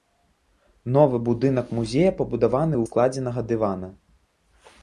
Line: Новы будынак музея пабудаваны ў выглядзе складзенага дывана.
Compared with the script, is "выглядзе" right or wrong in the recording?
wrong